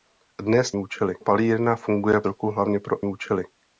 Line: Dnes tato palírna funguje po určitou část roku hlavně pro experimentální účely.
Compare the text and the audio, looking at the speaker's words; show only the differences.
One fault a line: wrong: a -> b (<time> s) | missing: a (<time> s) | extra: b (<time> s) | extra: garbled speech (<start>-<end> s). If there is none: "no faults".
wrong: tato -> účely (0.8 s)
missing: po určitou část (2.2 s)
missing: experimentální (3.0 s)